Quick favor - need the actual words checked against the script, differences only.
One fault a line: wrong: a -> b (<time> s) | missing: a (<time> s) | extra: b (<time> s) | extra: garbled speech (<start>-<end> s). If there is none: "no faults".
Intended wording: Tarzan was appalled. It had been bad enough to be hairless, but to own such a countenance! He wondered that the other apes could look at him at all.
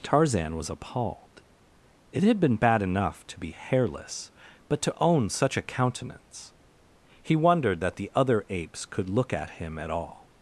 no faults